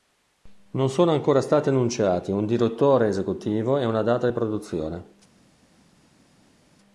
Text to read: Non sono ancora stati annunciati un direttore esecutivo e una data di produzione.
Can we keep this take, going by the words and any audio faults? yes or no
yes